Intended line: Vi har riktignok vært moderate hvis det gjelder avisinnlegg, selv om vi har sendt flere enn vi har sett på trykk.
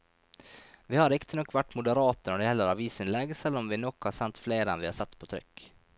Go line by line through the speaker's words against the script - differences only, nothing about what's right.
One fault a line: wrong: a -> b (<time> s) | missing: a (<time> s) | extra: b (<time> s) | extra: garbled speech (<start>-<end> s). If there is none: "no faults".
wrong: hvis -> når (2.3 s)
extra: nok (3.8 s)